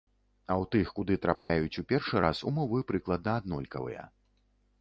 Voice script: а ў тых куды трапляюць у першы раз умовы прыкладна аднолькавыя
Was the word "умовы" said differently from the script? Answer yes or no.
no